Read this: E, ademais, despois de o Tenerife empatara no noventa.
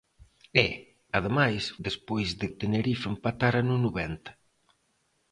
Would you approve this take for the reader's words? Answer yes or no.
yes